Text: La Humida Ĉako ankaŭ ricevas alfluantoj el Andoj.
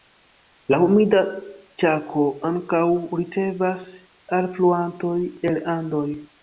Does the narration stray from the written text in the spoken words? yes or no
no